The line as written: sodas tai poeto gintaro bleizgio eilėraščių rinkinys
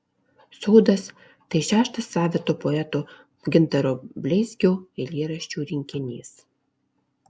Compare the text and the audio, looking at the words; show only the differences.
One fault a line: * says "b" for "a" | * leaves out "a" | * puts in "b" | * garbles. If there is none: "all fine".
* puts in "šeštas savito"